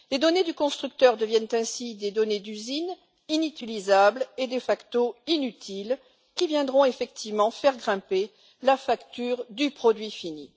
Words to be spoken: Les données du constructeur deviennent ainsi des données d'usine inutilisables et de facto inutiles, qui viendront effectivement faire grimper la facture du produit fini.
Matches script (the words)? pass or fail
pass